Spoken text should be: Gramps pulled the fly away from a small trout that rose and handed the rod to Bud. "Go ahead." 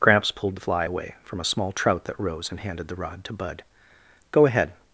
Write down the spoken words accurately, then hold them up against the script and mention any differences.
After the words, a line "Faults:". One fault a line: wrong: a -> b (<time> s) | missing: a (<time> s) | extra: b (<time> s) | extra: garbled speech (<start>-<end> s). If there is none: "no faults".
Gramps pulled the fly away from a small trout that rose and handed the rod to Bud. "Go ahead."
Faults:
no faults